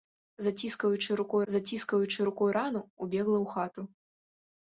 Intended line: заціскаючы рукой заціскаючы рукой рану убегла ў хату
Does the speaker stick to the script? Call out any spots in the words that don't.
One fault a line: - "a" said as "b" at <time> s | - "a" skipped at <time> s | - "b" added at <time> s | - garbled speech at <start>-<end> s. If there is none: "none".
none